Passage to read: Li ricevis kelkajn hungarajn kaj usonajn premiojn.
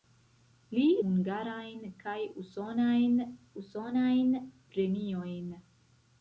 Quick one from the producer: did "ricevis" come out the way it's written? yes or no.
no